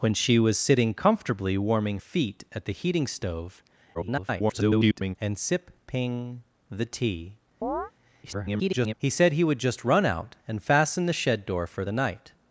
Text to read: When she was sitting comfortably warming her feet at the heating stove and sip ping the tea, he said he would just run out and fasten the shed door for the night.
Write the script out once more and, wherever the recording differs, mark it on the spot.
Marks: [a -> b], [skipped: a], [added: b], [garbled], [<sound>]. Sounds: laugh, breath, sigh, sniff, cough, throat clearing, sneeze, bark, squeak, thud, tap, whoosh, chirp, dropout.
When she was sitting comfortably warming [skipped: her] feet at the heating stove [garbled] and sip ping the tea, [chirp] [garbled] he said he would just run out and fasten the shed door for the night.